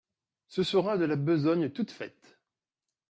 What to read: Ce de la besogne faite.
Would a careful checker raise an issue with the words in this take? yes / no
yes